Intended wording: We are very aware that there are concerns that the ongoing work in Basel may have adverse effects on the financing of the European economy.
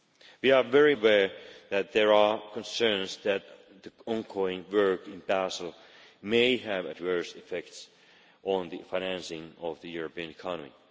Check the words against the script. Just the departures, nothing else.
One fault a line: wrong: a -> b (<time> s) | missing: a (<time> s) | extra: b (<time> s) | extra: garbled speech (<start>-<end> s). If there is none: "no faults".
no faults